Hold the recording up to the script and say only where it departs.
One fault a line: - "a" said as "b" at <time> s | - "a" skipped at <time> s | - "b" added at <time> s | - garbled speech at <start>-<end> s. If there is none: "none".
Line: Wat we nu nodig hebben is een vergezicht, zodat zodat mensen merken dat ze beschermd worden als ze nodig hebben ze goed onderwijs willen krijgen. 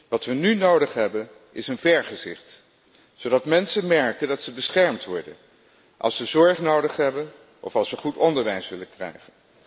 - "zodat" skipped at 3.5 s
- "zorg" added at 6.2 s
- "of als" added at 7.6 s